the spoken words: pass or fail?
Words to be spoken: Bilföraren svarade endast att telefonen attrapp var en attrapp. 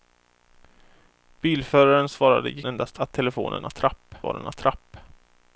pass